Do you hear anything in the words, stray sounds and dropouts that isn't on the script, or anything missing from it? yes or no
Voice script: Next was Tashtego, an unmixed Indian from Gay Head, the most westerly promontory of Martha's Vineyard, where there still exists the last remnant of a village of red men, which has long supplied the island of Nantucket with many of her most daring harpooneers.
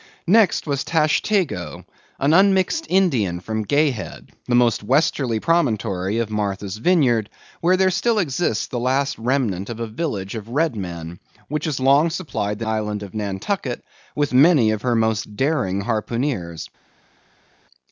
no